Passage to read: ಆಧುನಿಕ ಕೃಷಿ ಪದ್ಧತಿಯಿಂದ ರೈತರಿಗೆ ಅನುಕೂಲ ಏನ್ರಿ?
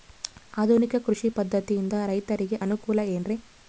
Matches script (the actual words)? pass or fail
pass